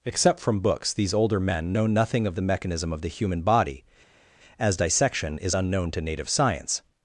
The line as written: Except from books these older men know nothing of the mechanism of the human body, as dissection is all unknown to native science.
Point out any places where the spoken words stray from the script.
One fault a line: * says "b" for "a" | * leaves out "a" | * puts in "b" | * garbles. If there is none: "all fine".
* leaves out "all"